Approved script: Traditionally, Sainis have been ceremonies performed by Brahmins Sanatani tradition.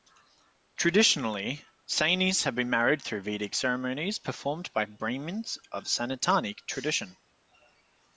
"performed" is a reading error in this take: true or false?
false